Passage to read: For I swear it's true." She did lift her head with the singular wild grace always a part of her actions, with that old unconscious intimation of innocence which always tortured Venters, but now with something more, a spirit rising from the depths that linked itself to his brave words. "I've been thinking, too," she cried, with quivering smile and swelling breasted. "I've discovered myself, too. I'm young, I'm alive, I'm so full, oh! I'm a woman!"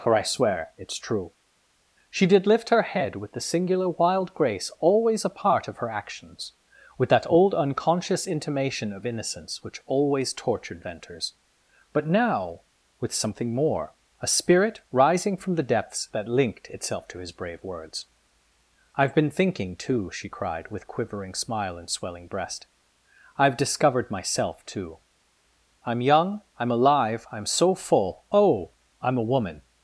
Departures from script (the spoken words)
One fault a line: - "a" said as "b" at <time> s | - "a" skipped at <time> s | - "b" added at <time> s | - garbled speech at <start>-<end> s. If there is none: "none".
- "breasted" said as "breast" at 22.3 s